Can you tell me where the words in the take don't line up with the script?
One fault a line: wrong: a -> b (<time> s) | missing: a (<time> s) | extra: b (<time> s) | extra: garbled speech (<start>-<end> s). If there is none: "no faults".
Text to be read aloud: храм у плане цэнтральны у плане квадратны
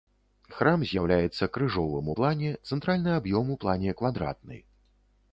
extra: з'яўляецца крыжовым (0.9 s)
extra: аб'ём (3.2 s)